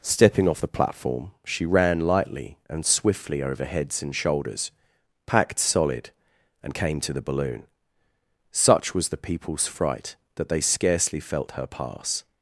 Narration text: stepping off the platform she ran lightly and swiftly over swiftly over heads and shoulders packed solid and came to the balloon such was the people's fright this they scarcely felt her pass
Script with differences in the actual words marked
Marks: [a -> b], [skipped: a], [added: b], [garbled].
stepping off the platform she ran lightly and swiftly over [skipped: swiftly over] heads and shoulders packed solid and came to the balloon such was the people's fright [this -> that] they scarcely felt her pass